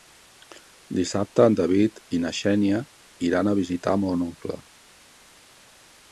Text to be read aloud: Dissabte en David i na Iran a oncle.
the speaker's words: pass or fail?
fail